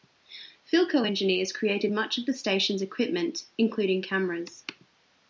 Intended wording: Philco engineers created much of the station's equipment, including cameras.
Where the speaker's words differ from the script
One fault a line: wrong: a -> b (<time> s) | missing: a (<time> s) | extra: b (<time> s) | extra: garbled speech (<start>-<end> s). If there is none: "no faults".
no faults